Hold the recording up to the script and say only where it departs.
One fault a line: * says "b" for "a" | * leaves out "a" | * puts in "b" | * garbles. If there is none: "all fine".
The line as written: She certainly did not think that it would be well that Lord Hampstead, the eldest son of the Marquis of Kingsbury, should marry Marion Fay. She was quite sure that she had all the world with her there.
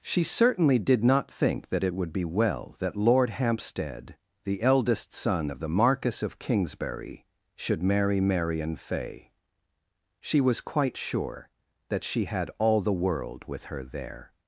all fine